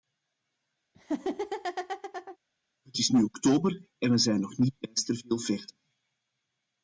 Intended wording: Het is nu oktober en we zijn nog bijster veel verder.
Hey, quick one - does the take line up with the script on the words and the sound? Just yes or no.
no